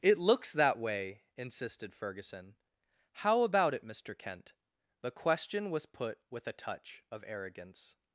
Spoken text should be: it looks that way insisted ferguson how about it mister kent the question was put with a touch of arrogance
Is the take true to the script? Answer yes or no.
yes